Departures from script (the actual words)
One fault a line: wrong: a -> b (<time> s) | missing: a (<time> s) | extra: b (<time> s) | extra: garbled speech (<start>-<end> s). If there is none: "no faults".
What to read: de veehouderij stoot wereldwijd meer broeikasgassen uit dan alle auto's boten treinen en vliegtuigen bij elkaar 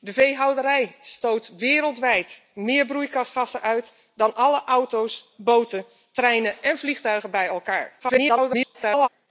extra: garbled speech (8.0-9.1 s)